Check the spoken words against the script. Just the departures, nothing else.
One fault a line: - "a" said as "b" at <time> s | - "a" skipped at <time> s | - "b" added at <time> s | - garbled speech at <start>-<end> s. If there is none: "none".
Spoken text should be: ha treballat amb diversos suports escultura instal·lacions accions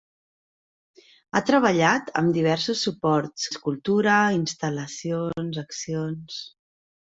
none